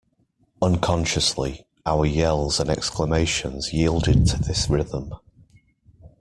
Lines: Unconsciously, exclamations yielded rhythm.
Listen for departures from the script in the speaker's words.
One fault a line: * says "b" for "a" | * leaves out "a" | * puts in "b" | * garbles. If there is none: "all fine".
* puts in "our yells and"
* puts in "to this"